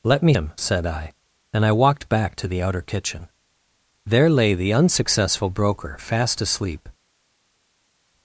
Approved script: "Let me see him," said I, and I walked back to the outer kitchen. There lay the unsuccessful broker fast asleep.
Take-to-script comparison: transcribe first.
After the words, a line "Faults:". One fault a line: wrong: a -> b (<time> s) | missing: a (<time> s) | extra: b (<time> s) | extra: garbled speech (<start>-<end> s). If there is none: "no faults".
"Let me him," said I, and I walked back to the outer kitchen. There lay the unsuccessful broker fast asleep.
Faults:
missing: see (0.3 s)